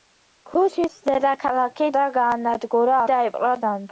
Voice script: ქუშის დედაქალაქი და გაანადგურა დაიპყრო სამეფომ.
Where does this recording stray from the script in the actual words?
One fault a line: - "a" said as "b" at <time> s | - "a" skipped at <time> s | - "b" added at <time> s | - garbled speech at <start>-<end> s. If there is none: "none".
none